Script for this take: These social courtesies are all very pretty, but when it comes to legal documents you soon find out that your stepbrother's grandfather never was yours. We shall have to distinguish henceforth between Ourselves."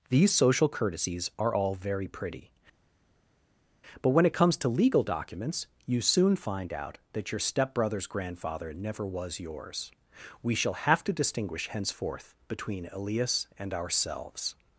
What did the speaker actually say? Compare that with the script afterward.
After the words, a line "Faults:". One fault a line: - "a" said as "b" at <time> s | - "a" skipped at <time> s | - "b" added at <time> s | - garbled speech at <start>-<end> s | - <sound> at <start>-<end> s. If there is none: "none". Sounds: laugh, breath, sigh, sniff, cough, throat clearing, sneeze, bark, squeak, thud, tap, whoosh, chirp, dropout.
These social courtesies are all very pretty, but when it comes to legal documents you soon find out that your stepbrother's grandfather never was yours. We shall have to distinguish henceforth between Elias and ourselves."
Faults:
- "Elias and" added at 12.9 s